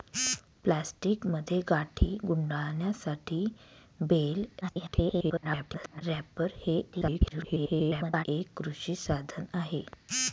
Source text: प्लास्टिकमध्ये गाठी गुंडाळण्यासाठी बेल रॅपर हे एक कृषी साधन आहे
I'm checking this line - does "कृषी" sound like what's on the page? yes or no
yes